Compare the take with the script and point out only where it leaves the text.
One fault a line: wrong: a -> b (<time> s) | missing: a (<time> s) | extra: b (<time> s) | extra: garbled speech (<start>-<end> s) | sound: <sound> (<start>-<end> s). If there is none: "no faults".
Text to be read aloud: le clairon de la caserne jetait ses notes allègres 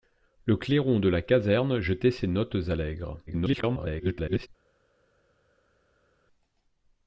extra: garbled speech (3.3-4.5 s)